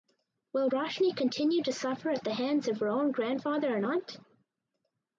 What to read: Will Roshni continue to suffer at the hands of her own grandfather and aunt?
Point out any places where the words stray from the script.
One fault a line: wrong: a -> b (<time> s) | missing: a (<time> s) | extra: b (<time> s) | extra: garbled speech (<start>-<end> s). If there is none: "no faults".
no faults